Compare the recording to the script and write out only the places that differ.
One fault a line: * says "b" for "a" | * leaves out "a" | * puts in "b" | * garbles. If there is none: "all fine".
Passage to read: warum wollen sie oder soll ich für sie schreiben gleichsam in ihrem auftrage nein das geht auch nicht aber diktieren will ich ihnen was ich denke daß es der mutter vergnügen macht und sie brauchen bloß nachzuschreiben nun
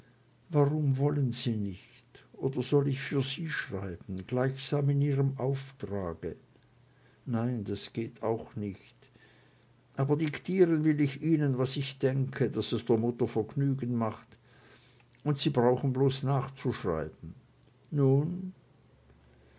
* puts in "nicht"